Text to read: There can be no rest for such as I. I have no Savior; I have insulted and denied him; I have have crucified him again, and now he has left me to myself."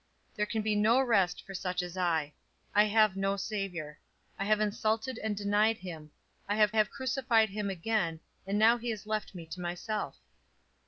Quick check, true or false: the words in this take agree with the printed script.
true